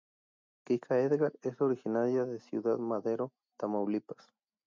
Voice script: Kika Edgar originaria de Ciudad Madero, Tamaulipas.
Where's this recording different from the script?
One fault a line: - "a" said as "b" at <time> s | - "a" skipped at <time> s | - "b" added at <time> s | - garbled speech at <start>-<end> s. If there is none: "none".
- "es" added at 1.4 s